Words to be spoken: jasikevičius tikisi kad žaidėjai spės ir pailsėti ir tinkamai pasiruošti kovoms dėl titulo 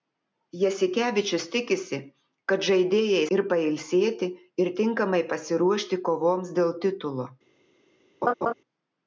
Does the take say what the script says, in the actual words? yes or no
no